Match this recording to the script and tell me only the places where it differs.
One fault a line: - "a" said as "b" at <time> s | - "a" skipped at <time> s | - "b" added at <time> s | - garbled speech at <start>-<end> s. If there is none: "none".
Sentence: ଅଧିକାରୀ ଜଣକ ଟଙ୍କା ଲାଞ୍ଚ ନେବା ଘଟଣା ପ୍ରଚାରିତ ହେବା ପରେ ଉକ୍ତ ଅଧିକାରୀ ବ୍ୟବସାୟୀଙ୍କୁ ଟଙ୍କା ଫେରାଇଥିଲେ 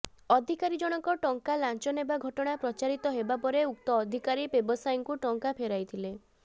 none